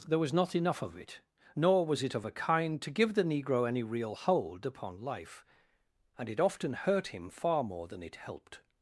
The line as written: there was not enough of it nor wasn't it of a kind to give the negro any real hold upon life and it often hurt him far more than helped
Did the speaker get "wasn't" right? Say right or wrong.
wrong